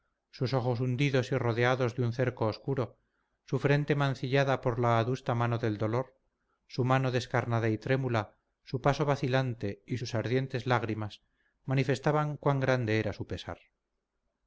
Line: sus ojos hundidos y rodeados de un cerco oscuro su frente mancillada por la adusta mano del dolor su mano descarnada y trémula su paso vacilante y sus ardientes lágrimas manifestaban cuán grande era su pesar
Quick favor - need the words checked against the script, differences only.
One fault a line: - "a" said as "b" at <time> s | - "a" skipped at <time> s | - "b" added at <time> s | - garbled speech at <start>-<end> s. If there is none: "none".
none